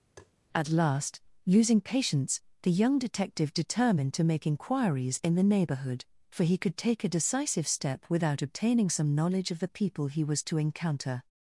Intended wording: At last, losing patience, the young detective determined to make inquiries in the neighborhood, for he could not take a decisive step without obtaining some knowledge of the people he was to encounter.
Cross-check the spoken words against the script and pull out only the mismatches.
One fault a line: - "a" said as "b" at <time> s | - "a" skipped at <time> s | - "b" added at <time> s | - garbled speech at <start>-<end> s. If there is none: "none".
- "not" skipped at 6.8 s